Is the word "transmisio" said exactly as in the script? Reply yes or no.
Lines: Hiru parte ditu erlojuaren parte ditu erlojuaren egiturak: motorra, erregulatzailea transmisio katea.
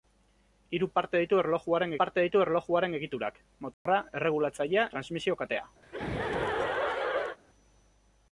yes